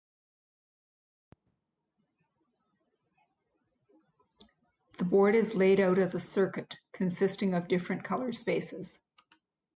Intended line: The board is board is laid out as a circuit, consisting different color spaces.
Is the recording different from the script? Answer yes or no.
yes